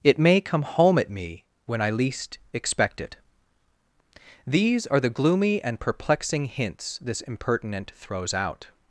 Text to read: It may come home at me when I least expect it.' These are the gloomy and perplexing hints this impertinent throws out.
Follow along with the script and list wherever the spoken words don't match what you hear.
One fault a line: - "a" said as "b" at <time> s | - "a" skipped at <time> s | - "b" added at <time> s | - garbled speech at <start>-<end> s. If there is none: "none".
none